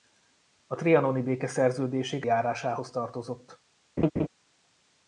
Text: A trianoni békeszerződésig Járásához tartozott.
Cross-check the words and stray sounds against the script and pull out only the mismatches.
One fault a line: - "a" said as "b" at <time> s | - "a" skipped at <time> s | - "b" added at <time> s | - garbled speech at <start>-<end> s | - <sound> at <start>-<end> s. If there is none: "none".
- laugh at 4.0-4.3 s